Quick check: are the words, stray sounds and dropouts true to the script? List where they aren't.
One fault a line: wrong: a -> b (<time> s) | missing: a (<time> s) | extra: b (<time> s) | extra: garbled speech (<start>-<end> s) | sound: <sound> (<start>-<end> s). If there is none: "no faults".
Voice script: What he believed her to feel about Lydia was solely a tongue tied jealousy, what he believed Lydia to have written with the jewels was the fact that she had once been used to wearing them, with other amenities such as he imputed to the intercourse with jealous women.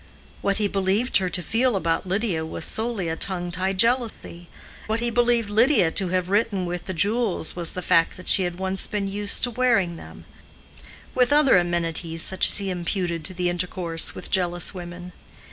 sound: dropout (4.1-4.2 s)